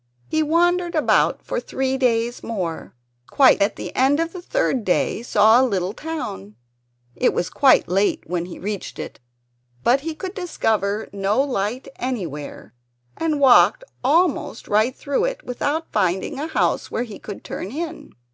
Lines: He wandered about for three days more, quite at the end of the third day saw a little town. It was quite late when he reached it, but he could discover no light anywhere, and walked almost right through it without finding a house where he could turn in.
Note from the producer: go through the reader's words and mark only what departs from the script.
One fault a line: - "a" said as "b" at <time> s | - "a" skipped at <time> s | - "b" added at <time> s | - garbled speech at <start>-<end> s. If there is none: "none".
none